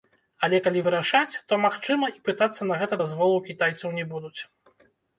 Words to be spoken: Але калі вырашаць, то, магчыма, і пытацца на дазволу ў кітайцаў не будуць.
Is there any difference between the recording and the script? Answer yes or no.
yes